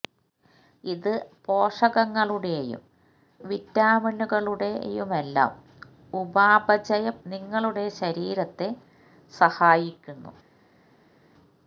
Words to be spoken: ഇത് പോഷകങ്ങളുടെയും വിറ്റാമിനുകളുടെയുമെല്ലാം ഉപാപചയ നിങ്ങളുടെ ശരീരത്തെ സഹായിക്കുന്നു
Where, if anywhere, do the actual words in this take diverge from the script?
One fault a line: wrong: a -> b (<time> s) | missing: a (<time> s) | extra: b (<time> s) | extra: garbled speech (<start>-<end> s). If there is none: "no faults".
no faults